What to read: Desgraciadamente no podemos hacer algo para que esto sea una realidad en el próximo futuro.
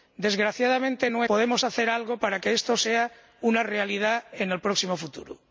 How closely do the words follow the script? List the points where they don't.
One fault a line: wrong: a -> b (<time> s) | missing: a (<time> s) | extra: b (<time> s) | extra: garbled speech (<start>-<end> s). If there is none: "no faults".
no faults